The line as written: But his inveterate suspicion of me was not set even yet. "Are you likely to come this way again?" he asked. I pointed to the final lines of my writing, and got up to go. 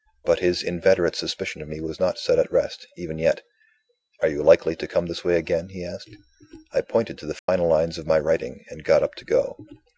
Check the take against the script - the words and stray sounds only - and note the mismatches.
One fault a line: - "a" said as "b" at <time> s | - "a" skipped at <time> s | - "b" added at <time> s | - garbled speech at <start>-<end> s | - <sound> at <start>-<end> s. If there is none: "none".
- "at rest" added at 2.4 s
- dropout at 7.4-7.5 s